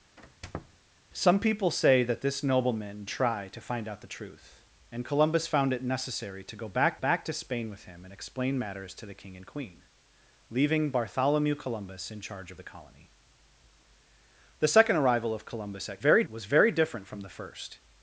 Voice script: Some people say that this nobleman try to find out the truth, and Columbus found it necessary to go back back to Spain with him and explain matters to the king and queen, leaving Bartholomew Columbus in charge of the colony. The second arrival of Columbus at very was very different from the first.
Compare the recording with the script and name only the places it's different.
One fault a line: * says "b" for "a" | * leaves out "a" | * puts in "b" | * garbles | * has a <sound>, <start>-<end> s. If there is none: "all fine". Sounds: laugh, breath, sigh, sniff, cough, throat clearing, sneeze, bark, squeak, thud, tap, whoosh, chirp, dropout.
* has a squeak, 0.2-0.8 s